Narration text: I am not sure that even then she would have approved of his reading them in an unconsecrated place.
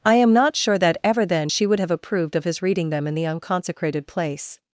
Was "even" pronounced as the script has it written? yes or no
no